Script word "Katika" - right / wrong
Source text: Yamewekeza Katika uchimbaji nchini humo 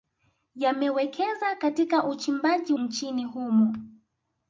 right